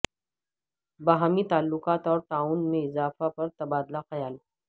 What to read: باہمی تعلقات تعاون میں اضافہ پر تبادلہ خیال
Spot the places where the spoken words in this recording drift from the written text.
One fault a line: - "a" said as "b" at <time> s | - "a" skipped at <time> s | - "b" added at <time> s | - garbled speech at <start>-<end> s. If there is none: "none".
- "اور" added at 2.1 s